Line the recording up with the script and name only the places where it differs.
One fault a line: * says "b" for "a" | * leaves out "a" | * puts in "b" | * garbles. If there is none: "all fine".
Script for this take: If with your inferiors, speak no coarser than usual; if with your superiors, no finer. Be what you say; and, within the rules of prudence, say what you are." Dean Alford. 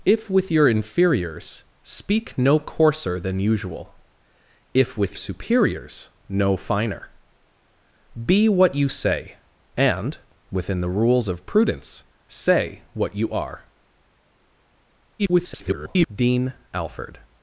* leaves out "your"
* garbles